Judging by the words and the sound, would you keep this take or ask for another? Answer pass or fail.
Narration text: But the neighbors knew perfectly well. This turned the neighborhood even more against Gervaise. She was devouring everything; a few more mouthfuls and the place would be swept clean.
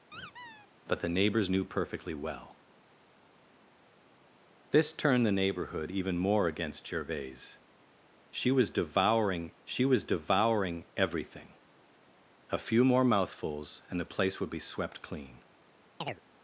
fail